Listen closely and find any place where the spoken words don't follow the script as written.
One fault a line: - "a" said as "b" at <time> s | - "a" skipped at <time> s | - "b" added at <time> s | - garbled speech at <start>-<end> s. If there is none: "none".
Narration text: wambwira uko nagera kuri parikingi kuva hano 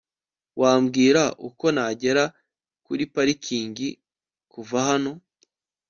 none